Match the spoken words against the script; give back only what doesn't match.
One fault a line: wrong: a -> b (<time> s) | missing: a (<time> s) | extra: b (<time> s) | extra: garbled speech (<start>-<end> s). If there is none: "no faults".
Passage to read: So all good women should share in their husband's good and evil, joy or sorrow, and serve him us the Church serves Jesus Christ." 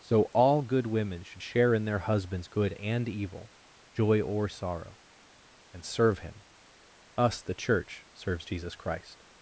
no faults